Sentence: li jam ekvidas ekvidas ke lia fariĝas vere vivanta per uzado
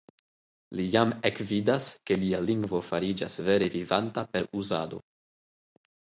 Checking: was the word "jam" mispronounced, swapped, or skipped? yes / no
no